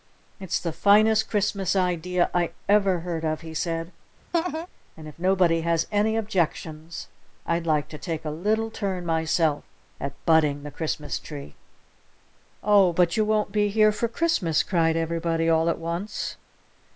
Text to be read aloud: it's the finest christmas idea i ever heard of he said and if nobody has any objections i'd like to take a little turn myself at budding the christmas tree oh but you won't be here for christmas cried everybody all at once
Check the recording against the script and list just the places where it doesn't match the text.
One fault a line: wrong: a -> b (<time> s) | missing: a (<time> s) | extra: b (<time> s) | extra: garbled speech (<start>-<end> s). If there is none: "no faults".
no faults